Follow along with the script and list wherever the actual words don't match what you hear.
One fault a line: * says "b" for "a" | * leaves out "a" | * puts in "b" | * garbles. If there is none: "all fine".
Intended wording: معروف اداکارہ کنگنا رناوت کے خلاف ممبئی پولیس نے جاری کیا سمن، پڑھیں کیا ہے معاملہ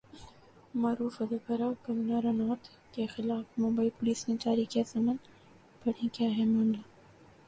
all fine